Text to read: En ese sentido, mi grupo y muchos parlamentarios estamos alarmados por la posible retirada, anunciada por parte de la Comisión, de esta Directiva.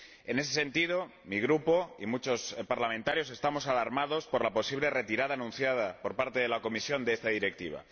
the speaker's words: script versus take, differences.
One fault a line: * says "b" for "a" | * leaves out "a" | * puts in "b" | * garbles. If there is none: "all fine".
all fine